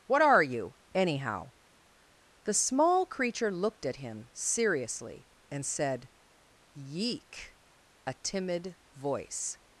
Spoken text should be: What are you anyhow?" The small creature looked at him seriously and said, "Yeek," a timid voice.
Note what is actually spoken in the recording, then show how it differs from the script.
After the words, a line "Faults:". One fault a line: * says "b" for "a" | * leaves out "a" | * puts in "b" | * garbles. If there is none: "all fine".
What are you anyhow?" The small creature looked at him seriously and said, "Yeek," a timid voice.
Faults:
all fine